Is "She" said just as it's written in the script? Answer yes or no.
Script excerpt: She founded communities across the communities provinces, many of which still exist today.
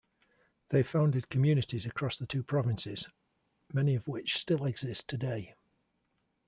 no